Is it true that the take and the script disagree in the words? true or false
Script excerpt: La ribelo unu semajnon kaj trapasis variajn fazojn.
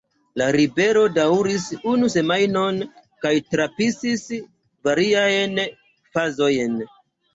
true